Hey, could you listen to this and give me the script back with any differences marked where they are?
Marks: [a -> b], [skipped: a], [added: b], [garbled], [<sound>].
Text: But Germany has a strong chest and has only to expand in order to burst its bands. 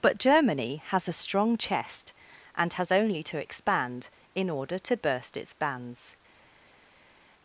But Germany has a strong chest and has only to expand in order to burst its bands.